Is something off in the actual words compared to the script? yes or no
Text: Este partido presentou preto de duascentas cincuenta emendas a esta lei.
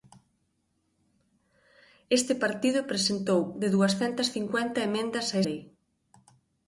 yes